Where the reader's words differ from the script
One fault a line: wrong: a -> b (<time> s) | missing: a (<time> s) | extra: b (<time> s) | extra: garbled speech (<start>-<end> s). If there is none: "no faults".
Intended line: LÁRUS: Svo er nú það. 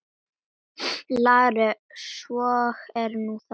no faults